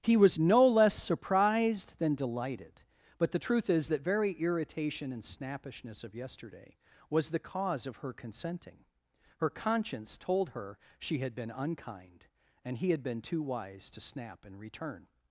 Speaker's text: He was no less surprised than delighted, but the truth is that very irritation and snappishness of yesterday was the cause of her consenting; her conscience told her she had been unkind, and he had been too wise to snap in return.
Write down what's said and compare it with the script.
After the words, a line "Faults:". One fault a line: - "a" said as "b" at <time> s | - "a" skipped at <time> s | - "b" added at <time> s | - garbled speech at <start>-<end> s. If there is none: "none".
He was no less surprised than delighted, but the truth is that very irritation and snappishness of yesterday was the cause of her consenting; her conscience told her she had been unkind, and he had been too wise to snap in return.
Faults:
none